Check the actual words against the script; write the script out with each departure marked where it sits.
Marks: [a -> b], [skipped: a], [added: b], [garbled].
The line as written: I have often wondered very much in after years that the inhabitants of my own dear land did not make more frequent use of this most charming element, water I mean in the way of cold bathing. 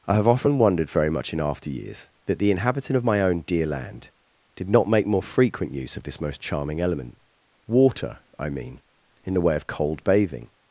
I have often wondered very much in after years that the [inhabitants -> inhabitant] of my own dear land did not make more frequent use of this most charming element, water I mean in the way of cold bathing.